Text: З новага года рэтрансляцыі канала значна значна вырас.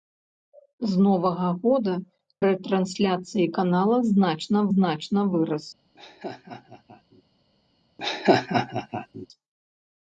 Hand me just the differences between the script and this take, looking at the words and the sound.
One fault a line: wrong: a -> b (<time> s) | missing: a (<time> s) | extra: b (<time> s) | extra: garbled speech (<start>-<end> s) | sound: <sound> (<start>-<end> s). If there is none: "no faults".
sound: laugh (5.9-7.2 s)
sound: laugh (8.0-9.3 s)